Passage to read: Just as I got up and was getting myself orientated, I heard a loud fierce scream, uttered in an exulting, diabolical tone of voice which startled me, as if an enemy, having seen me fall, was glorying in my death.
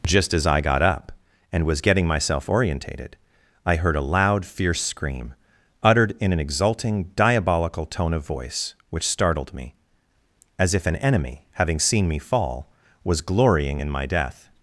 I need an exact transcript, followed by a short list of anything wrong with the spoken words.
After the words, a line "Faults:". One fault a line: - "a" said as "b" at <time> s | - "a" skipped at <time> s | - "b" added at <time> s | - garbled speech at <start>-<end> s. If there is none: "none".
Just as I got up and was getting myself orientated, I heard a loud fierce scream, uttered in an exulting, diabolical tone of voice which startled me, as if an enemy, having seen me fall, was glorying in my death.
Faults:
none